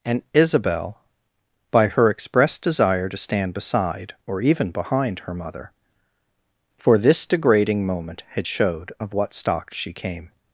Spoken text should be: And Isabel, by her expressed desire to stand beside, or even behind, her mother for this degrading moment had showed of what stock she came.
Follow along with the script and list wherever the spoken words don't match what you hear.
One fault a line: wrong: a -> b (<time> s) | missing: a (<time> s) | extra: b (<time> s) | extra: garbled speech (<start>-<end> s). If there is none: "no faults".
no faults